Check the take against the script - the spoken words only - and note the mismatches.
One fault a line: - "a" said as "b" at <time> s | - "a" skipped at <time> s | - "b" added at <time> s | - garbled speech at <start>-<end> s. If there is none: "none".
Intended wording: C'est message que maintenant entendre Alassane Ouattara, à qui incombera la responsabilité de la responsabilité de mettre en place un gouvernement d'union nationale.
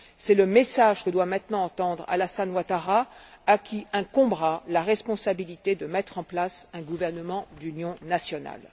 - "le" added at 0.3 s
- "doit" added at 1.1 s
- "la responsabilité de" skipped at 5.9 s